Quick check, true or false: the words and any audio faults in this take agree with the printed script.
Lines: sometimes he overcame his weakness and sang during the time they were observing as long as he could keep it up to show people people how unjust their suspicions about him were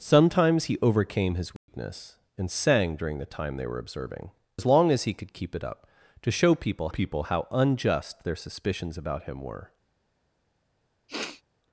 false